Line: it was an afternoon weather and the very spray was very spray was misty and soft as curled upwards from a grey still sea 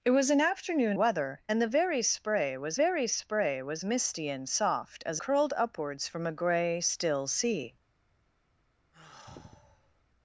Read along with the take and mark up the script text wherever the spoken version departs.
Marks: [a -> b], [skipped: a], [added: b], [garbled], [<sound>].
it was an afternoon weather and the very spray was very spray was misty and soft as curled upwards from a grey still sea [sigh]